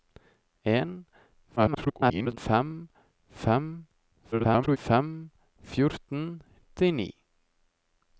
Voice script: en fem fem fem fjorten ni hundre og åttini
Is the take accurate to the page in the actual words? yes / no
no